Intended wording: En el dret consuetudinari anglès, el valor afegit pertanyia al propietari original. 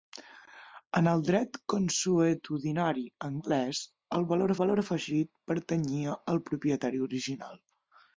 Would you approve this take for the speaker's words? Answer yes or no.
no